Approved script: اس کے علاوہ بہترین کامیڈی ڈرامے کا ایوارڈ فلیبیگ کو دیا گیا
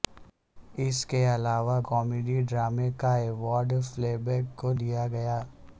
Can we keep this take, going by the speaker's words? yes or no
no